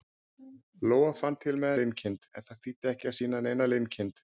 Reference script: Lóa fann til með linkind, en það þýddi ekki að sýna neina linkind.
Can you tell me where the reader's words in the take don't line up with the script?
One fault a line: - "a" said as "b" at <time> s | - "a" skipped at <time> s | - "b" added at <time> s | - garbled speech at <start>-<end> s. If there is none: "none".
none